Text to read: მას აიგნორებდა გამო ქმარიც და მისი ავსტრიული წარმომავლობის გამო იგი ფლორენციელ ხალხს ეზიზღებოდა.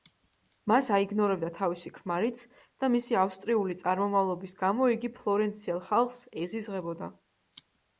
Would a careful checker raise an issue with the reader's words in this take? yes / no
yes